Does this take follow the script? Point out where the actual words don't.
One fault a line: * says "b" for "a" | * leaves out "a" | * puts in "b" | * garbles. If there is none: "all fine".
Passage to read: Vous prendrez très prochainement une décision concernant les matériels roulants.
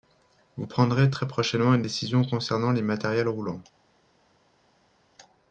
all fine